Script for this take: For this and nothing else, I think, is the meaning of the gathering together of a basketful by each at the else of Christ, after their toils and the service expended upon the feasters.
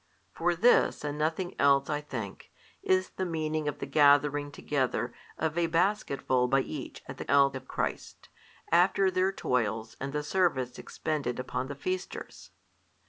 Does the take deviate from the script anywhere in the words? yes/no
no